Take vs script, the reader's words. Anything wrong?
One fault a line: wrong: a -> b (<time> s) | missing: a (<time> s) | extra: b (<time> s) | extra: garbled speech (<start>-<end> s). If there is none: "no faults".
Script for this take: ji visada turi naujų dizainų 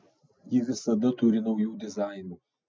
no faults